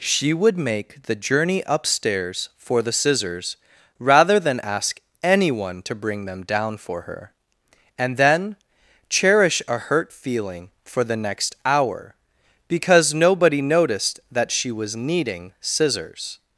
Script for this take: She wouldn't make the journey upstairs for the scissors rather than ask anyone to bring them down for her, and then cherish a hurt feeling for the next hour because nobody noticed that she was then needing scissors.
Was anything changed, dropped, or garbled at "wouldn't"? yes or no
yes